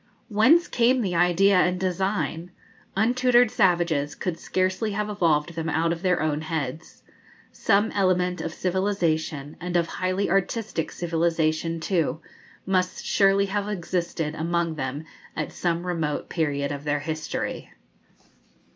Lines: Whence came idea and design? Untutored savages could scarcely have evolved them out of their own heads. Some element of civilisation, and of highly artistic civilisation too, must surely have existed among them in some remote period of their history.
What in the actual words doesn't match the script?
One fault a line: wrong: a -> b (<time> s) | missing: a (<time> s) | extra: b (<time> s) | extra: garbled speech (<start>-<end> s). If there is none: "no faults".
extra: the (1.0 s)
wrong: in -> at (15.3 s)